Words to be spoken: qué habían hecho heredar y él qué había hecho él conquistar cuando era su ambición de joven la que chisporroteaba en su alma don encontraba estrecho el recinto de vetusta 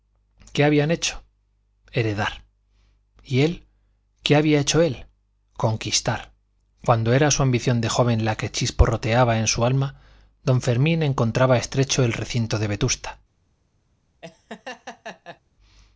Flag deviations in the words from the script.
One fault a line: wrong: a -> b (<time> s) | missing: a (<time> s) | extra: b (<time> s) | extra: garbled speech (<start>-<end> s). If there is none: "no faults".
extra: fermín (10.6 s)